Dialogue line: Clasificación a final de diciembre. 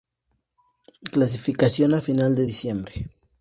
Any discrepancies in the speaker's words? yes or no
no